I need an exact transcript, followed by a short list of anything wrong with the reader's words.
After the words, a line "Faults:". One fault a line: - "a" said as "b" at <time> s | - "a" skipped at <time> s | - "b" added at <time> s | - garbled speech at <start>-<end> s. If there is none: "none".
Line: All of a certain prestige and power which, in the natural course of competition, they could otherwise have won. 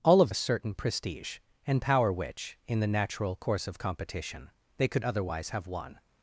All of a certain prestige and power which, in the natural course of competition, they could otherwise have won.
Faults:
none